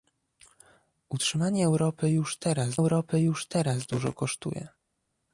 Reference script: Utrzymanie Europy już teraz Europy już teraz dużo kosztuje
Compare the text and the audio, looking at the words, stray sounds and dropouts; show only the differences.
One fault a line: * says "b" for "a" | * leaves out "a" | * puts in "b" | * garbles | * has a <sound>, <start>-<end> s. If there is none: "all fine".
all fine